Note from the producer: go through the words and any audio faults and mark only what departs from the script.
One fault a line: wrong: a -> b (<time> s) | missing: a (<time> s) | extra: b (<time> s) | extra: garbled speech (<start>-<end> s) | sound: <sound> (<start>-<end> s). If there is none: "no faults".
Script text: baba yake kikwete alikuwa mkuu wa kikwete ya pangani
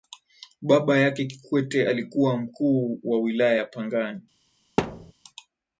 wrong: kikwete -> wilaya (3.2 s)
sound: thud (4.8-5.1 s)